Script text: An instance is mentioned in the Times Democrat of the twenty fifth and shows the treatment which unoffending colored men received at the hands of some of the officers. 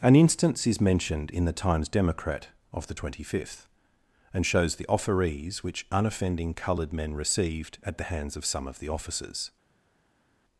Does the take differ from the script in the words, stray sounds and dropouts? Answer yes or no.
yes